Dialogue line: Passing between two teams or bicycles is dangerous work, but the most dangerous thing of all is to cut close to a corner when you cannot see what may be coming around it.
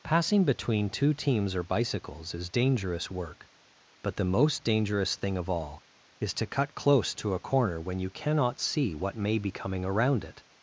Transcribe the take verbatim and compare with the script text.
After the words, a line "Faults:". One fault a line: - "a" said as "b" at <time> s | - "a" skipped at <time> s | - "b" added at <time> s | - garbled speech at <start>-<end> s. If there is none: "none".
Passing between two teams or bicycles is dangerous work, but the most dangerous thing of all is to cut close to a corner when you cannot see what may be coming around it.
Faults:
none